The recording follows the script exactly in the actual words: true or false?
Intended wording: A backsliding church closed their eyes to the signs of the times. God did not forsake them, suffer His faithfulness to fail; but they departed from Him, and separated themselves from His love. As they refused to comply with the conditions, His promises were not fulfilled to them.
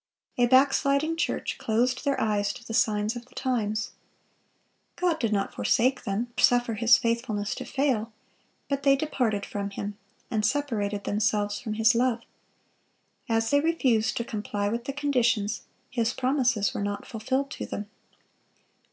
true